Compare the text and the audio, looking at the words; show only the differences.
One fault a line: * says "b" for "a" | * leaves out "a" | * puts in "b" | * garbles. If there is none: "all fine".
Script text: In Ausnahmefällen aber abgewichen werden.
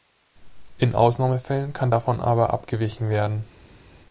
* puts in "kann davon"